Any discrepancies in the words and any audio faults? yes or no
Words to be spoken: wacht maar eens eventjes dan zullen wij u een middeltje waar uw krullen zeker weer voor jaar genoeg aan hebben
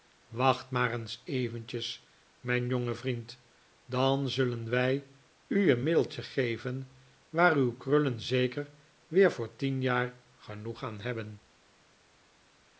yes